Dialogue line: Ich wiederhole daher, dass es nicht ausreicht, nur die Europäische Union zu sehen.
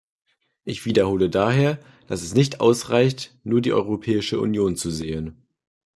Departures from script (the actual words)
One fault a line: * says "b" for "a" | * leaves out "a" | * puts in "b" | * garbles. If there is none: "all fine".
all fine